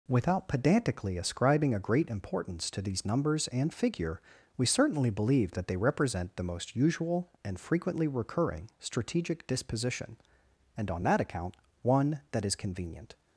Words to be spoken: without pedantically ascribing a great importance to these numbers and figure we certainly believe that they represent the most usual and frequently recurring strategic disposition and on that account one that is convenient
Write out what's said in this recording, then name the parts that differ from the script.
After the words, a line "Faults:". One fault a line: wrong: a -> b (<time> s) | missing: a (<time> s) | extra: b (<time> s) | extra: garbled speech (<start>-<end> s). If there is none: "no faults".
without pedantically ascribing a great importance to these numbers and figure we certainly believe that they represent the most usual and frequently recurring strategic disposition and on that account one that is convenient
Faults:
no faults